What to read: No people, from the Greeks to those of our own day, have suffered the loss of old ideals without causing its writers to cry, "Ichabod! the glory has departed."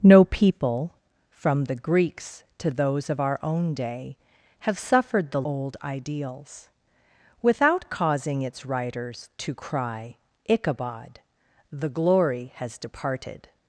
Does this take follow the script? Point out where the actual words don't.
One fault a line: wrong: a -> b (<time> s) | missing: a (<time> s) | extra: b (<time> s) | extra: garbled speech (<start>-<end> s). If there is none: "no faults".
missing: loss of (5.4 s)